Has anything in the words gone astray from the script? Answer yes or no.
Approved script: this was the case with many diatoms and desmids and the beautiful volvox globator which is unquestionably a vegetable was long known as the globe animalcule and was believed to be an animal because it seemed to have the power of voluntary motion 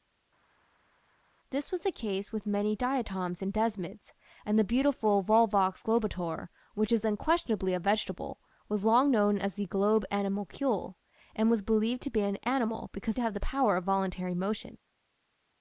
yes